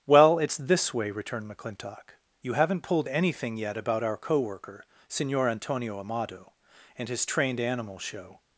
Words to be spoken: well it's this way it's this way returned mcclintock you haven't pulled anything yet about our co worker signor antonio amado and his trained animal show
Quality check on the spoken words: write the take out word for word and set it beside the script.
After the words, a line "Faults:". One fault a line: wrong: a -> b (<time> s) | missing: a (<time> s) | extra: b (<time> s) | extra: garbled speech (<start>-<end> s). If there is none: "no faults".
well it's this way returned mcclintock you haven't pulled anything yet about our co worker signor antonio amado and his trained animal show
Faults:
missing: it's this way (1.1 s)